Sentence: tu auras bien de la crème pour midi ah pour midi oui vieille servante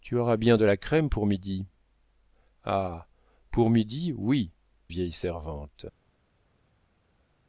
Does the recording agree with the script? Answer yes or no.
yes